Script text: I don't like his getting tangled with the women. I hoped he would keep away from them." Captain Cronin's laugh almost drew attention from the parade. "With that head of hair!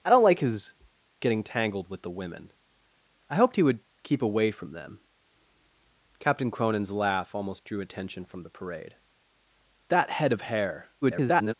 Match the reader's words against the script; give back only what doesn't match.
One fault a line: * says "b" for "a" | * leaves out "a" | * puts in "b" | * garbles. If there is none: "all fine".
* leaves out "With"
* garbles